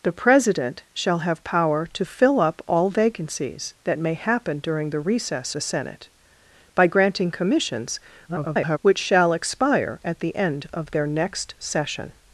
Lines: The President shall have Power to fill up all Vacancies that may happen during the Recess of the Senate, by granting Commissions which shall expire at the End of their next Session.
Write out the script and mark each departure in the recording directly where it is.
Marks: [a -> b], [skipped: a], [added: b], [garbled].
The President shall have Power to fill up all Vacancies that may happen during the Recess [skipped: of] the Senate, by granting Commissions [garbled] which shall expire at the End of their next Session.